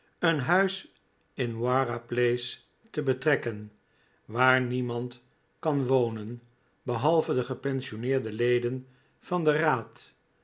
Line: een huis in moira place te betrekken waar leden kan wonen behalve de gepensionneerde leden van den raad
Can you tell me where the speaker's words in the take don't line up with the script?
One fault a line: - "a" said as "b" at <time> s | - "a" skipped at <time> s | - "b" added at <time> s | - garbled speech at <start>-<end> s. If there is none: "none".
- "leden" said as "niemand" at 4.6 s